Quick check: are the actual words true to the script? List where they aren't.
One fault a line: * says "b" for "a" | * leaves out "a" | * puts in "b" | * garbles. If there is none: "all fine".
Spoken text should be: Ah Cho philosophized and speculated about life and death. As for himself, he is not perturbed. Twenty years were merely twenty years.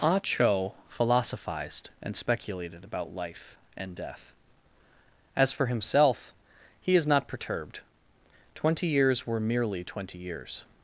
all fine